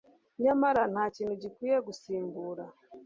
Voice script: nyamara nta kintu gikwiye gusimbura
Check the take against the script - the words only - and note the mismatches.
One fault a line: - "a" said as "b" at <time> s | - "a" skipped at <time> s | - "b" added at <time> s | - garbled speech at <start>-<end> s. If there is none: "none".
none